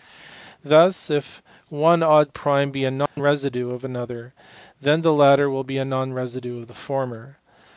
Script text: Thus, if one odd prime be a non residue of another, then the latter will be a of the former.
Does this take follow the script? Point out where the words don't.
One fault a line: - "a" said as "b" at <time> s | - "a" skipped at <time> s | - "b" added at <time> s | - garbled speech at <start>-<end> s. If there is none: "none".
- "non residue" added at 5.8 s